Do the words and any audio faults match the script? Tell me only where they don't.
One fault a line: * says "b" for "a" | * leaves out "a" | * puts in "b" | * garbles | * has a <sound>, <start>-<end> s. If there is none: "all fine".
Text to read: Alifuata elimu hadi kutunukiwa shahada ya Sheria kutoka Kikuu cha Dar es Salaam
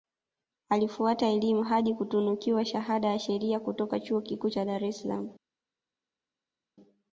* puts in "Chuo"